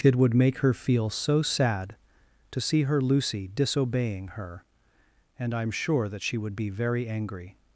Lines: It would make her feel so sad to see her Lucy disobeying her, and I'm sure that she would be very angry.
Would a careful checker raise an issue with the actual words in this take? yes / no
no